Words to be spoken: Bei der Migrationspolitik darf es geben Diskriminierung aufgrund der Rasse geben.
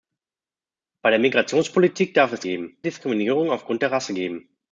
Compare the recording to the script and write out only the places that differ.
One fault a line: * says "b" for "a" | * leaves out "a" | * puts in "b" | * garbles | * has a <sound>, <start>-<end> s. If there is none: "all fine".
all fine